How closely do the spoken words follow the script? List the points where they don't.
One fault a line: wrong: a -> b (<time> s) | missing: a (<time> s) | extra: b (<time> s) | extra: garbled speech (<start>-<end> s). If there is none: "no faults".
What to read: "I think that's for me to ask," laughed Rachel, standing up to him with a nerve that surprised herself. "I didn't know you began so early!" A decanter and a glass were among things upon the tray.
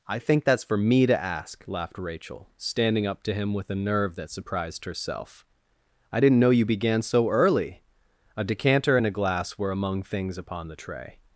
no faults